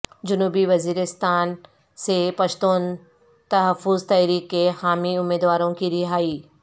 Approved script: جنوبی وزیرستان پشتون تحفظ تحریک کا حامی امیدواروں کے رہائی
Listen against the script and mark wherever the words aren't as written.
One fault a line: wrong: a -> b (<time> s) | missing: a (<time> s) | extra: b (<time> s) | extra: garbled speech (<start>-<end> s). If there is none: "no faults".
extra: سے (2.0 s)
wrong: کا -> کے (4.5 s)
wrong: کے -> کی (5.7 s)